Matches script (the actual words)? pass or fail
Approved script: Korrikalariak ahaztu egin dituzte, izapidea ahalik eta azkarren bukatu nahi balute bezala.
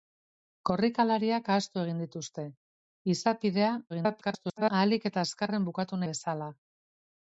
fail